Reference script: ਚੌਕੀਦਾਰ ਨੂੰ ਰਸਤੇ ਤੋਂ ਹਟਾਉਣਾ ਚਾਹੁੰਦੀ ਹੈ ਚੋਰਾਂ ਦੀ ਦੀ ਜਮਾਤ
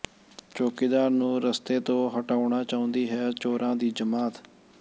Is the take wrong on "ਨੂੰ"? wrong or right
right